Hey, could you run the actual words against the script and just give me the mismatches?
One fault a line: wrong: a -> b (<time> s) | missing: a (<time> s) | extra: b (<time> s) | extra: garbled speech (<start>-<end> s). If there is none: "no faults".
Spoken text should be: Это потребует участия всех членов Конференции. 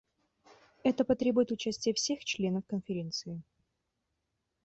no faults